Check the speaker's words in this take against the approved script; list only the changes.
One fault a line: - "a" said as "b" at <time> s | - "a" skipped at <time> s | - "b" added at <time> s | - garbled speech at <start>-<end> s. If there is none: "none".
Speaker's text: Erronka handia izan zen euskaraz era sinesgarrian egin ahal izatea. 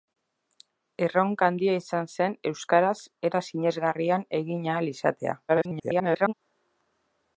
- garbled speech at 5.5-6.3 s